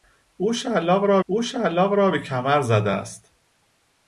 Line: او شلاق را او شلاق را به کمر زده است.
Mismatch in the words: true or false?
false